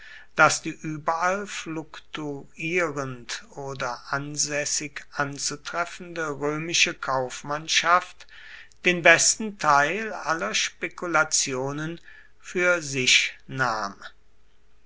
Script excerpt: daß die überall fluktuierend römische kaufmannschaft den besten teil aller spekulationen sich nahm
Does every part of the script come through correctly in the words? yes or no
no